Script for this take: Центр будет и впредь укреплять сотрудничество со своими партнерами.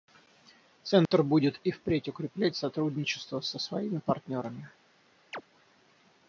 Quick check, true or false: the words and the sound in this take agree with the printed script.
false